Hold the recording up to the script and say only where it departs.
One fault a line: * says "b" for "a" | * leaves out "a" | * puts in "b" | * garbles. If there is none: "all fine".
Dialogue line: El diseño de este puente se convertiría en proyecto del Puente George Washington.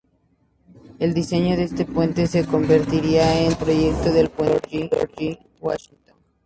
all fine